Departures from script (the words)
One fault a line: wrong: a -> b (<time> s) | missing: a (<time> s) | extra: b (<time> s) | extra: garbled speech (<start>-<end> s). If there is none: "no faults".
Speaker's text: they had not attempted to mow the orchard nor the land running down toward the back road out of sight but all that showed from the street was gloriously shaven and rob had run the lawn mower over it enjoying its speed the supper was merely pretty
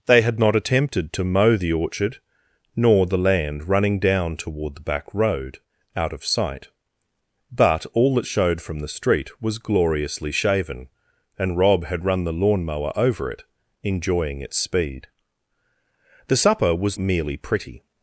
no faults